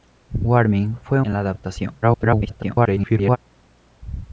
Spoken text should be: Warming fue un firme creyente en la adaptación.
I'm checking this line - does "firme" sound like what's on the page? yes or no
no